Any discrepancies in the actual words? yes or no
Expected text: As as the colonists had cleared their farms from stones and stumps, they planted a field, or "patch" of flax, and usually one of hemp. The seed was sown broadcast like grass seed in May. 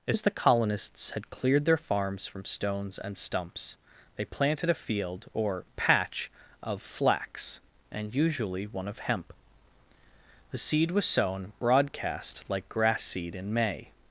no